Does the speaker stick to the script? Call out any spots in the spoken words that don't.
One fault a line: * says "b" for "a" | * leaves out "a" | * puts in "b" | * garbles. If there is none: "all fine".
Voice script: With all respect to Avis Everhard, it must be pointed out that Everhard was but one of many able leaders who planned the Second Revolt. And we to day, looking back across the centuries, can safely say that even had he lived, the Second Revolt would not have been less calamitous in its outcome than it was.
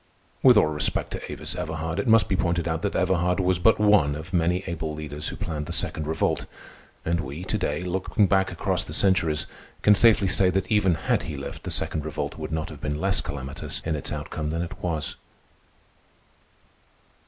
all fine